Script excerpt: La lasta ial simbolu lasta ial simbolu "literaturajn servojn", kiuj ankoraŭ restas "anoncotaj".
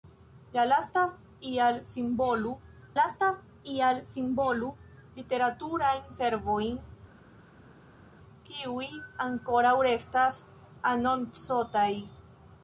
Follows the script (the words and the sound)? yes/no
yes